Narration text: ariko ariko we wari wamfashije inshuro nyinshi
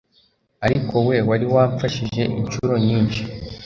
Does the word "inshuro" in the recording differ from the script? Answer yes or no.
no